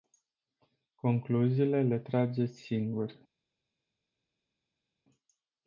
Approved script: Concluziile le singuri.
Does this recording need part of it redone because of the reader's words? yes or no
yes